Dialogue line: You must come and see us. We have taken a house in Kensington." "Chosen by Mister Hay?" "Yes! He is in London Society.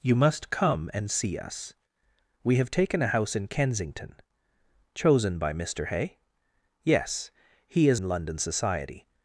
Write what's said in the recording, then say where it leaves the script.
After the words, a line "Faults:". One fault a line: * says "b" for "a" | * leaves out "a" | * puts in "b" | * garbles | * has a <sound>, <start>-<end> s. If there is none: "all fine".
You must come and see us. We have taken a house in Kensington." "Chosen by Mister Hay?" "Yes! He is in London Society.
Faults:
all fine